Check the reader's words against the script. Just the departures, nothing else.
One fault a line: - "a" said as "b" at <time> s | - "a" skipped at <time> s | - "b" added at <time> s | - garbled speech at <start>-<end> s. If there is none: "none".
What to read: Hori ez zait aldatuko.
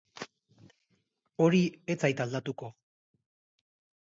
none